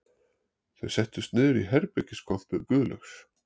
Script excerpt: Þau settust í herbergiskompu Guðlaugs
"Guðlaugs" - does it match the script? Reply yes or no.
yes